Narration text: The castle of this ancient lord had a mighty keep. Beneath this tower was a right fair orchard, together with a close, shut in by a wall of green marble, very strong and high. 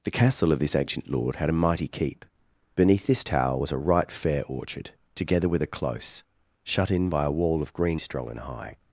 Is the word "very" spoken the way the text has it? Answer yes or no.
no